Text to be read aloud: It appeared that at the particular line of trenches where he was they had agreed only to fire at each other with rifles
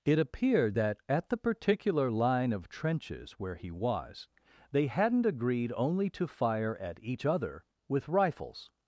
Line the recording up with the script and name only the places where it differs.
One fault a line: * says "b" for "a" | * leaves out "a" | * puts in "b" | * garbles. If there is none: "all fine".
* says "hadn't" for "had"